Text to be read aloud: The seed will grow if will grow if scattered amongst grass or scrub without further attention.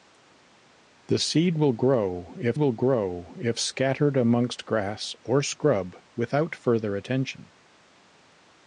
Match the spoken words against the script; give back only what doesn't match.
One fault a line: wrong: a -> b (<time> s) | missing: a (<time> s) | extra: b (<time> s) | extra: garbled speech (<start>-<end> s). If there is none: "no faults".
no faults